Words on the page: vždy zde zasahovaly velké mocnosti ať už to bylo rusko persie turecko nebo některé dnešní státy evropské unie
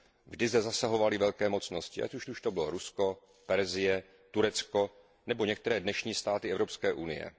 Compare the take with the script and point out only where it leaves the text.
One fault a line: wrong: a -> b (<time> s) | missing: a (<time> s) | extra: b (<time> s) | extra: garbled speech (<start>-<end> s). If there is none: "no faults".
extra: už (2.3 s)